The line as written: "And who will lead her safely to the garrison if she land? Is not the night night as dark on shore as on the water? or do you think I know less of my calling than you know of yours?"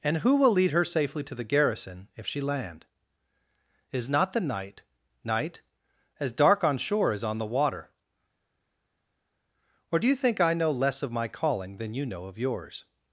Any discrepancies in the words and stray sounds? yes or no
no